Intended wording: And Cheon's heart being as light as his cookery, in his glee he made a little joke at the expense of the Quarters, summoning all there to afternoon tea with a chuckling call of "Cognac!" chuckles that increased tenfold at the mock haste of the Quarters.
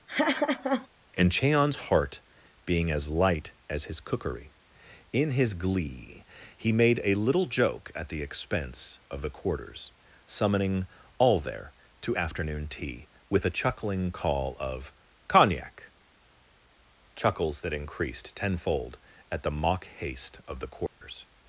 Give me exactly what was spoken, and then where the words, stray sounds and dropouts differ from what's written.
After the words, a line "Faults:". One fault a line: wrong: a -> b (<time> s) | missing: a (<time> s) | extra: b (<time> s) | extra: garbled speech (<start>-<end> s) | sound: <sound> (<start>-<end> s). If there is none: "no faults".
And Cheon's heart being as light as his cookery, in his glee he made a little joke at the expense of the Quarters, summoning all there to afternoon tea with a chuckling call of "Cognac!" chuckles that increased tenfold at the mock haste of the Quarters.
Faults:
sound: laugh (0.1-0.9 s)
sound: dropout (20.9-21.0 s)